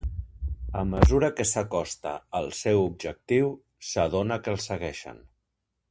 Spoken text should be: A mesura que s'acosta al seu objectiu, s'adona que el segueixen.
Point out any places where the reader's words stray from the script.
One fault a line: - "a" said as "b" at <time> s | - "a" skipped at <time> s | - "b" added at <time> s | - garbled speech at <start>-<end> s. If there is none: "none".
none